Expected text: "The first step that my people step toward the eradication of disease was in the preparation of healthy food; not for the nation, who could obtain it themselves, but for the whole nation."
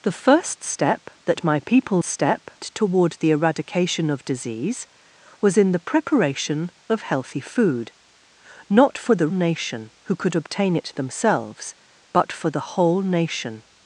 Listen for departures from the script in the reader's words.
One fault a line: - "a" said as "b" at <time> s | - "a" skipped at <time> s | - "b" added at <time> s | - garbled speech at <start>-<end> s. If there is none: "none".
none